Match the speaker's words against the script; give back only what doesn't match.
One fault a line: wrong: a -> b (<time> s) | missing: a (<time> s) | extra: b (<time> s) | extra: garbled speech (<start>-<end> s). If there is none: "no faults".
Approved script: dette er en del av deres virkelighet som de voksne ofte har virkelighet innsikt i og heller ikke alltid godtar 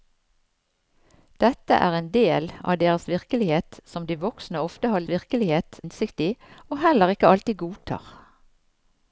no faults